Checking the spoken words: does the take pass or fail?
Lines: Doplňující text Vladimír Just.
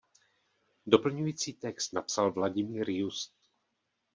fail